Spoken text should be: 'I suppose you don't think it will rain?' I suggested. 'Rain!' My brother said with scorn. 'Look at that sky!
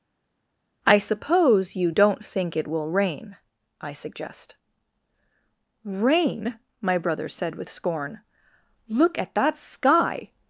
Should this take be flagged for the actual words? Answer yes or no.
yes